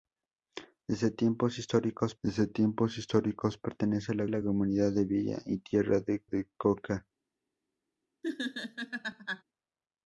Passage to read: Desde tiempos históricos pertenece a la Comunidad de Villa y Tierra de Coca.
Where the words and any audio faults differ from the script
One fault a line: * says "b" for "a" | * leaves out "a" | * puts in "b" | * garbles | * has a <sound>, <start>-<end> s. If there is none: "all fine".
* puts in "desde tiempos históricos"
* puts in "la"
* puts in "de"
* has a laugh, 8.2-9.4 s